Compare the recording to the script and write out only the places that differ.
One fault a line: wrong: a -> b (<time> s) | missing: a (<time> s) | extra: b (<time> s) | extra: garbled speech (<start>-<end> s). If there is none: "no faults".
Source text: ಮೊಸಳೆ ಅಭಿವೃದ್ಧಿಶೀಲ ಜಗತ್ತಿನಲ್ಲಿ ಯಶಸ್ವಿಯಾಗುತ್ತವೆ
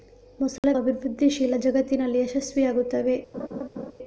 no faults